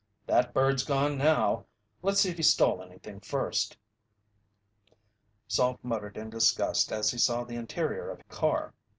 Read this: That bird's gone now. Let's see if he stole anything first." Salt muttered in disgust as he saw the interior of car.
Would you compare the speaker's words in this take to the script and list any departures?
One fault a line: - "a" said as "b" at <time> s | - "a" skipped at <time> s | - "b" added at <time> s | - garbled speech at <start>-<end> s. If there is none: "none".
none